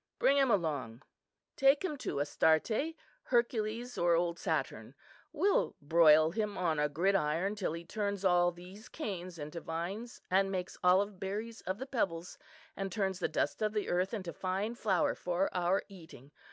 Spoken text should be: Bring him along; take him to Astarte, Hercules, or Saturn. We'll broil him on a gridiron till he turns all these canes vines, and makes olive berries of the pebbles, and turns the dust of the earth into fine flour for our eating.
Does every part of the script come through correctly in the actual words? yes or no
no